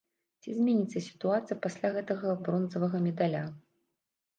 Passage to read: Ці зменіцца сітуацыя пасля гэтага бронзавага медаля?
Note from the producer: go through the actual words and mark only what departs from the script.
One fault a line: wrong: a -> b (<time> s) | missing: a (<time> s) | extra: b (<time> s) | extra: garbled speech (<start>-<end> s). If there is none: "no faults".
no faults